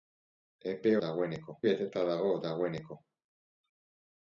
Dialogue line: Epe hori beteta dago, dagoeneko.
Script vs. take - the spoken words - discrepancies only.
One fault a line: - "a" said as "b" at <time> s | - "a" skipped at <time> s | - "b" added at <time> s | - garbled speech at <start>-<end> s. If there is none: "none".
- "hori" said as "dagoeneko" at 1.0 s